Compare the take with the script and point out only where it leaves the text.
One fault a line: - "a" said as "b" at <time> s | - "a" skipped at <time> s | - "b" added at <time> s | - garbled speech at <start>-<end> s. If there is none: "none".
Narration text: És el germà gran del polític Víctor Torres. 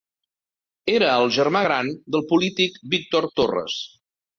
- "És" said as "Era" at 0.9 s